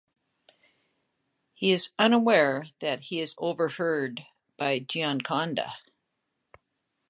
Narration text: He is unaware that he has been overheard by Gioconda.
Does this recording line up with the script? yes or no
no